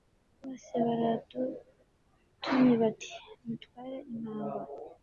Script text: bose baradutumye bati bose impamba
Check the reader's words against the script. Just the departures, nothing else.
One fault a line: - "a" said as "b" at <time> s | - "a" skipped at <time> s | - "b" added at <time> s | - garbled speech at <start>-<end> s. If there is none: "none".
- "bose" said as "mutware" at 3.5 s